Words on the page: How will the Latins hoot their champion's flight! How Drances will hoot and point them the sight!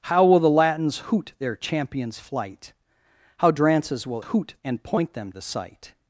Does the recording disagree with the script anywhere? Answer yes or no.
no